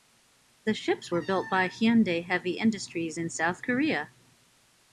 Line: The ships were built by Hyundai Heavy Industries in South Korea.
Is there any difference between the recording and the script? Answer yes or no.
no